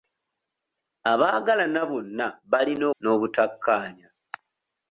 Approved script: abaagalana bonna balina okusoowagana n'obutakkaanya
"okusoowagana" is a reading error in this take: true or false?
true